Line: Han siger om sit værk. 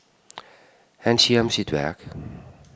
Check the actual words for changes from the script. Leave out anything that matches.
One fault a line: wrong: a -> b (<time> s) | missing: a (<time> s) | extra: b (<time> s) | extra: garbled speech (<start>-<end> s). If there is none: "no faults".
no faults